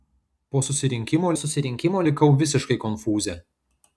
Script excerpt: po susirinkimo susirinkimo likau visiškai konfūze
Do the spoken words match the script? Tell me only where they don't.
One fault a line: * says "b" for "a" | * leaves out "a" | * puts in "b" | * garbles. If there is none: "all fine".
all fine